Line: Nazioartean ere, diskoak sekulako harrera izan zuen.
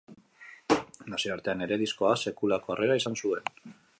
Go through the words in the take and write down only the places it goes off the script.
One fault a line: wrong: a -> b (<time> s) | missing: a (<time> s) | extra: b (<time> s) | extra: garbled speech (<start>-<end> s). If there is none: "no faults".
no faults